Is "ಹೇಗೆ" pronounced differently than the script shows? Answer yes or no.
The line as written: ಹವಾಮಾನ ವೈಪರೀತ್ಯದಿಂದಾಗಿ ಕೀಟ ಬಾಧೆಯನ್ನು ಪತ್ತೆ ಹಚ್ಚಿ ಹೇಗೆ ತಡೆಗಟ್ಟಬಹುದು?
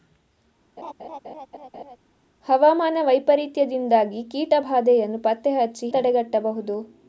yes